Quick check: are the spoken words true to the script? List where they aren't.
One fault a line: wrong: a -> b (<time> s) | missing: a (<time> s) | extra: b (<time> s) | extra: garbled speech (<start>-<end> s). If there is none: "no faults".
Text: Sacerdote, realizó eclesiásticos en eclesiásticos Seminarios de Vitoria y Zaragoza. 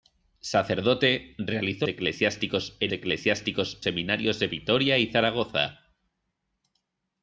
no faults